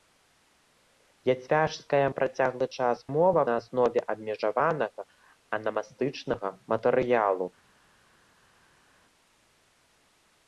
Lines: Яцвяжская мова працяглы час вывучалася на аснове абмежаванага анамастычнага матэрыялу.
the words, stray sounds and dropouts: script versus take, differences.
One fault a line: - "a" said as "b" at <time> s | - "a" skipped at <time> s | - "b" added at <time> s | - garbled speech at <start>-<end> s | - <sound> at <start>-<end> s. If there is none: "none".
- "мова" skipped at 2.0 s
- "вывучалася" said as "мова" at 3.2 s